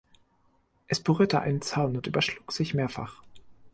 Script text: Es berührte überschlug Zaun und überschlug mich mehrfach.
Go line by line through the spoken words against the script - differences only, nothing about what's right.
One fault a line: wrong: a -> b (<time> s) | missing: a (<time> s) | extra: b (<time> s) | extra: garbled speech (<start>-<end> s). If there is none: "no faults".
wrong: überschlug -> einen (1.4 s)
wrong: mich -> sich (2.5 s)